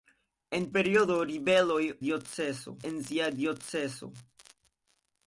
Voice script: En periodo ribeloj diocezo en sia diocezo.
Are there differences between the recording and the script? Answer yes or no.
no